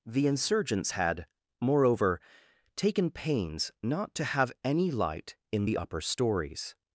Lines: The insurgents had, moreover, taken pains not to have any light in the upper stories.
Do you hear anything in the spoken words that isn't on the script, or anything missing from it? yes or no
no